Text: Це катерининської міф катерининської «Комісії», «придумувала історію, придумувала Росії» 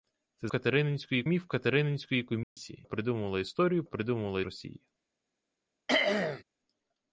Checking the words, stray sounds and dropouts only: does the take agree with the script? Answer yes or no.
no